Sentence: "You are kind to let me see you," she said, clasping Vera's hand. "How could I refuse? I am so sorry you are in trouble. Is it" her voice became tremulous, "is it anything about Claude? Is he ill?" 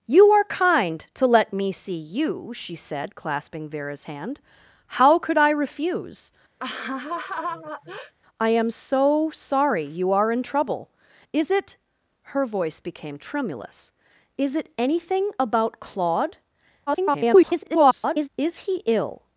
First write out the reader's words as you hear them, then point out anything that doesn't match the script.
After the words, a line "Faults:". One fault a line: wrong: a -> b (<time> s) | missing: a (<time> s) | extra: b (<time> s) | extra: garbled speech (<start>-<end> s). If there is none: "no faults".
"You are kind to let me see you," she said, clasping Vera's hand. "How could I refuse? I am so sorry you are in trouble. Is it" her voice became tremulous, "is it anything about Claude? [garbled] Is he ill?"
Faults:
extra: garbled speech (16.9-18.3 s)